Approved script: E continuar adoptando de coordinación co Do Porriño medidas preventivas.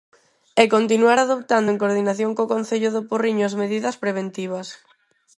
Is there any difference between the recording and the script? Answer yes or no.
yes